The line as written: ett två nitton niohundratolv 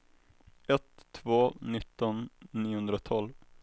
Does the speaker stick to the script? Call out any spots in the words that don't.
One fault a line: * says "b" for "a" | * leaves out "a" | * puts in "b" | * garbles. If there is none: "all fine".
all fine